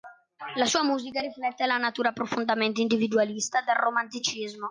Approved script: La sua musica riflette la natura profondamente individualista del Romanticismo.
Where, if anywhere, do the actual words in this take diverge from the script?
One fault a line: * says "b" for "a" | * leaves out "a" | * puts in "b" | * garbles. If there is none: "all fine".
all fine